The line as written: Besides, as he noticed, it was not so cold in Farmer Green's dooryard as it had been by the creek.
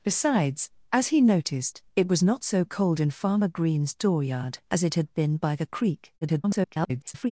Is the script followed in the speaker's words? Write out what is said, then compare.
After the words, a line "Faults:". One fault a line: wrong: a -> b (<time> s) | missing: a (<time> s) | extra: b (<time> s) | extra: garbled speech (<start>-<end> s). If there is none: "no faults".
Besides, as he noticed, it was not so cold in Farmer Green's dooryard as it had been by the creek. [garbled]
Faults:
extra: garbled speech (6.2-7.3 s)